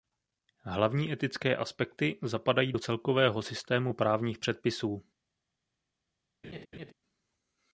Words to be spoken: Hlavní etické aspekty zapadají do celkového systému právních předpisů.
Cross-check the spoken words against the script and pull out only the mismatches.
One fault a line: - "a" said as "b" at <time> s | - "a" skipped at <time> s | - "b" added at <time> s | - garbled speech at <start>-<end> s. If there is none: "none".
none